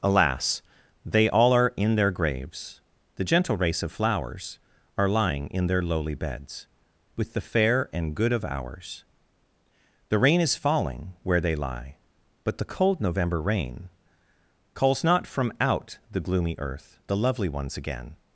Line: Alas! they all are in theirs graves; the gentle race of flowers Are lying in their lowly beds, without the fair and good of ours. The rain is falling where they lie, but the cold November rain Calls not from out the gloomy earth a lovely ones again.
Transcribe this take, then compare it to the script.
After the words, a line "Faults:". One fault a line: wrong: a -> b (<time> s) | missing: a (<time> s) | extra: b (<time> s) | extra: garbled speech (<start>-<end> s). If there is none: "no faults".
Alas! they all are in their graves; the gentle race of flowers Are lying in their lowly beds, with the fair and good of ours. The rain is falling where they lie, but the cold November rain Calls not from out the gloomy earth the lovely ones again.
Faults:
wrong: theirs -> their (1.9 s)
wrong: without -> with (7.2 s)
wrong: a -> the (17.1 s)